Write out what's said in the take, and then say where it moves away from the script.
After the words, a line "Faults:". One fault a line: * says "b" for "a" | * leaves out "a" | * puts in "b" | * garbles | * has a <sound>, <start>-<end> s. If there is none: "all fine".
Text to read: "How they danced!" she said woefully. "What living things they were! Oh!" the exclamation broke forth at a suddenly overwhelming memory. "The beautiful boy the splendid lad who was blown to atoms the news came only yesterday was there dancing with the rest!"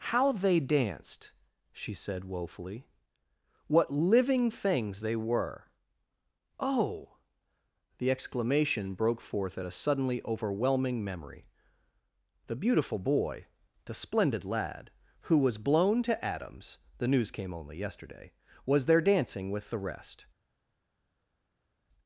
"How they danced!" she said woefully. "What living things they were! Oh!" the exclamation broke forth at a suddenly overwhelming memory. "The beautiful boy the splendid lad who was blown to atoms the news came only yesterday was there dancing with the rest!"
Faults:
all fine